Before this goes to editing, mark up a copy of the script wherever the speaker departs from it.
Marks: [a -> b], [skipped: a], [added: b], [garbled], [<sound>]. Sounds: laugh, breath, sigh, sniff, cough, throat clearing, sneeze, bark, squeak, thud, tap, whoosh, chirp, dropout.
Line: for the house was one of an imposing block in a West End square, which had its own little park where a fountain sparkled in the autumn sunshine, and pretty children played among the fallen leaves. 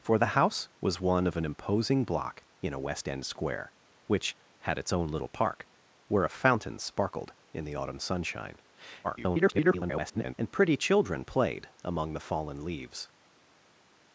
for the house was one of an imposing block in a West End square, which had its own little park where a fountain sparkled in the autumn sunshine, [garbled] and pretty children played among the fallen leaves.